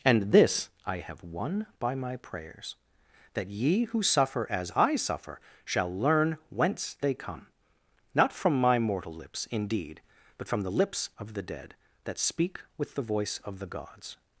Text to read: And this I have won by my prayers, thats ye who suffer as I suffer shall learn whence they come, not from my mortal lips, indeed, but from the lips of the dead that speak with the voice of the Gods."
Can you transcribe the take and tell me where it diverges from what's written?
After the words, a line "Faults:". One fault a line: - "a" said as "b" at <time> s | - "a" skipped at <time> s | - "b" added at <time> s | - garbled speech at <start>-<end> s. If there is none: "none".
And this I have won by my prayers, that ye who suffer as I suffer shall learn whence they come, not from my mortal lips, indeed, but from the lips of the dead that speak with the voice of the Gods."
Faults:
- "thats" said as "that" at 3.3 s